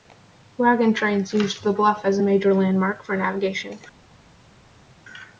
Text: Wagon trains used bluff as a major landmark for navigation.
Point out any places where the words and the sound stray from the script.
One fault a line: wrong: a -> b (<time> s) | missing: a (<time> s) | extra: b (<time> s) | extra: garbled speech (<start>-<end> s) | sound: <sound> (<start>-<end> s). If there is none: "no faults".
extra: the (1.6 s)